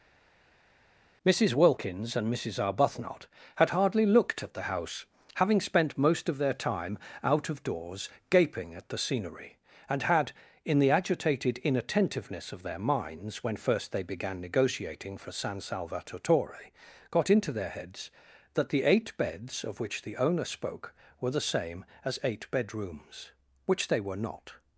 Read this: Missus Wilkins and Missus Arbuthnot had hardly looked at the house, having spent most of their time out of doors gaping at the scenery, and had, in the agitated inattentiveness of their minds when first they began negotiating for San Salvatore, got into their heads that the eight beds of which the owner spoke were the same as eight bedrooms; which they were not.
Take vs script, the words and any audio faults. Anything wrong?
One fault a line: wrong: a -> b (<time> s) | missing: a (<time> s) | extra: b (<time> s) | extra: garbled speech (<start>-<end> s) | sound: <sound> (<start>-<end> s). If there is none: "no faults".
no faults